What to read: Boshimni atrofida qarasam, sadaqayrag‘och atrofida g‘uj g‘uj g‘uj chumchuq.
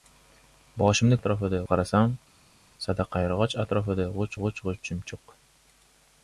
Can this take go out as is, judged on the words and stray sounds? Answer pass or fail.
pass